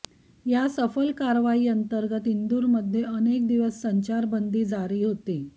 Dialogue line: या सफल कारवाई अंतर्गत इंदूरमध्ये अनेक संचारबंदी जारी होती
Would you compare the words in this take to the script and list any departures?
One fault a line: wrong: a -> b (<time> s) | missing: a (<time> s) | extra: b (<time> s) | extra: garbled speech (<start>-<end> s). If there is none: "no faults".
extra: दिवस (3.5 s)